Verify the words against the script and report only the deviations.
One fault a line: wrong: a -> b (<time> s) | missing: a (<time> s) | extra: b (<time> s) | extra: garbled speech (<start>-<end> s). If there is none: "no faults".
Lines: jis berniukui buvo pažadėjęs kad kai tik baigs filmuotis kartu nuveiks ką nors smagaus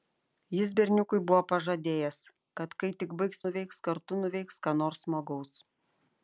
wrong: filmuotis -> nuveiks (3.5 s)